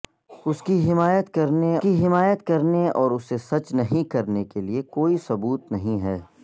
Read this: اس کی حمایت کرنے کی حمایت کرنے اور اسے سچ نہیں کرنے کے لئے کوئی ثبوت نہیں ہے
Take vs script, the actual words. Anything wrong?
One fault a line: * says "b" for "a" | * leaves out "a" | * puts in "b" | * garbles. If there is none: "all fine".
all fine